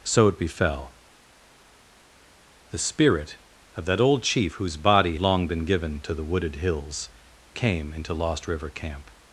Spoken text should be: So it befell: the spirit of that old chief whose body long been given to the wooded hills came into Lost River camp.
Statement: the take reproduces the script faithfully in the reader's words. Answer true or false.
true